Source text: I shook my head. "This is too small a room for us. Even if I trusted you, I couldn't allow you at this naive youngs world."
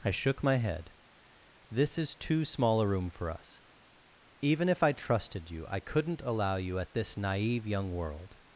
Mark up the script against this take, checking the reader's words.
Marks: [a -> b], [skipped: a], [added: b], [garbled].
I shook my head. "This is too small a room for us. Even if I trusted you, I couldn't allow you at this naive [youngs -> young] world."